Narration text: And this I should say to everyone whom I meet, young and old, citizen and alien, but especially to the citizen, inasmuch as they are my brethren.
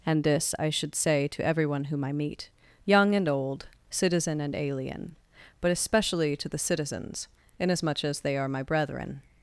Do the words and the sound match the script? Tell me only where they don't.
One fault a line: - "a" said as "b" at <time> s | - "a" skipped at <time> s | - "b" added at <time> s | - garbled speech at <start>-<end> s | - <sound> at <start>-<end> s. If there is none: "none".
- "citizen" said as "citizens" at 6.6 s